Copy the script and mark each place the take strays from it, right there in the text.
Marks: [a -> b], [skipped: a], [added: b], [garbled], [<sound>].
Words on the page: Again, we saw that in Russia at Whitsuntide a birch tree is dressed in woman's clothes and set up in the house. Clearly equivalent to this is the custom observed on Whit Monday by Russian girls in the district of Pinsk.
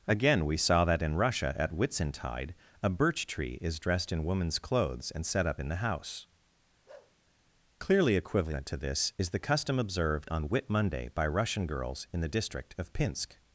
Again, we saw that in Russia at Whitsuntide a birch tree is dressed in woman's clothes and set up in the house. [bark] Clearly equivalent to this is the custom observed on Whit Monday by Russian girls in the district of Pinsk.